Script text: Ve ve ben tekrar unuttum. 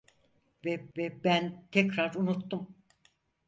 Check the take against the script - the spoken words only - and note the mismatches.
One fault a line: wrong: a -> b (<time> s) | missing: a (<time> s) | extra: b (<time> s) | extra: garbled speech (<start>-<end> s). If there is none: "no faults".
no faults